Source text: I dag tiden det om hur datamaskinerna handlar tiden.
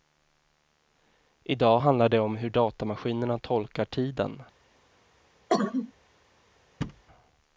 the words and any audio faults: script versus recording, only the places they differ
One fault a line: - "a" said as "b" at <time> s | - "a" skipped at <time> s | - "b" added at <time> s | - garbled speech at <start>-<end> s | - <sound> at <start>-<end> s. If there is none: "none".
- "tiden" said as "handlar" at 1.8 s
- "handlar" said as "tolkar" at 3.4 s
- cough at 5.5-5.9 s
- thud at 6.8-7.0 s